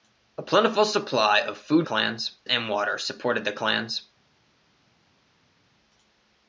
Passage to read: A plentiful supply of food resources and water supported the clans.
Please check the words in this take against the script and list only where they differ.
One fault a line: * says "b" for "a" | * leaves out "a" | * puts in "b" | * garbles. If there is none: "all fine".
* says "clans" for "resources"